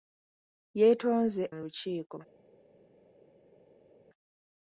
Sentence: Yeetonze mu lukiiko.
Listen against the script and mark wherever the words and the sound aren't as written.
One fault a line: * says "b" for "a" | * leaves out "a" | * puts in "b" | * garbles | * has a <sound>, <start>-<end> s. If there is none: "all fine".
all fine